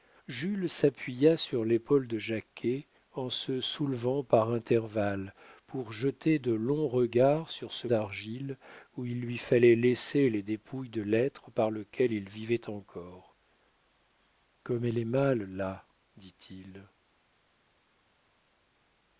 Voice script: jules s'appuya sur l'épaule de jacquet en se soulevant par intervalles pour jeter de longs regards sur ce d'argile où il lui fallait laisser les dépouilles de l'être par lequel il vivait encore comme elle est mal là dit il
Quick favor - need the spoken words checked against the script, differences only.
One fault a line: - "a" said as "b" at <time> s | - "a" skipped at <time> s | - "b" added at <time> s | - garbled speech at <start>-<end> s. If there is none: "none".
none